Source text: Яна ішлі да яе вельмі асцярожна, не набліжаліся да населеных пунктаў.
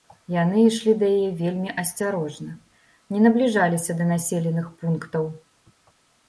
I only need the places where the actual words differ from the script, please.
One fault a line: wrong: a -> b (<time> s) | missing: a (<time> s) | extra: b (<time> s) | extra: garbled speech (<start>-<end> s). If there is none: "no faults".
wrong: Яна -> Яны (0.3 s)